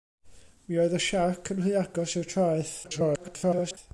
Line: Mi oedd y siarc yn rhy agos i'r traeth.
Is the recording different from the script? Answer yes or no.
yes